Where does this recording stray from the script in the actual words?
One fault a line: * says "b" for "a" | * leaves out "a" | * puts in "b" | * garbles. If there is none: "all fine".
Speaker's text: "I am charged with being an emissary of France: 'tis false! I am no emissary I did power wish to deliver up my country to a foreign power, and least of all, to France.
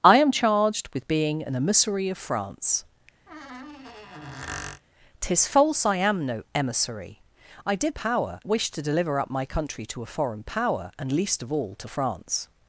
all fine